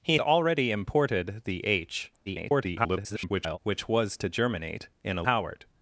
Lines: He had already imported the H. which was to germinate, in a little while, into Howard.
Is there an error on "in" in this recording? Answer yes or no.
no